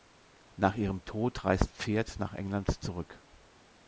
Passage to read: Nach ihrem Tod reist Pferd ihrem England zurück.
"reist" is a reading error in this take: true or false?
false